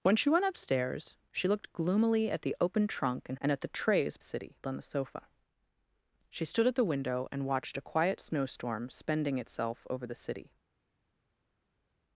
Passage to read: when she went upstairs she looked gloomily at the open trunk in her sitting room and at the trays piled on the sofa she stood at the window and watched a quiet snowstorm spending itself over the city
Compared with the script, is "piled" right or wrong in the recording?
wrong